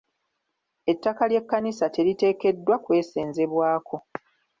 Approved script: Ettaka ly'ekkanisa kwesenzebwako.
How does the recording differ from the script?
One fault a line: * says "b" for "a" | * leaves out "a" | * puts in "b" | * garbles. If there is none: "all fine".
* puts in "teriteekeddwa"